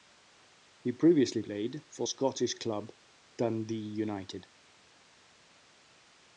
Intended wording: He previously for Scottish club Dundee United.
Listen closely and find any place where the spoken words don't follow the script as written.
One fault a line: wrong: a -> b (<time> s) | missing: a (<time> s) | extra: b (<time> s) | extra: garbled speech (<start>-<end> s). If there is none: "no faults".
extra: played (1.4 s)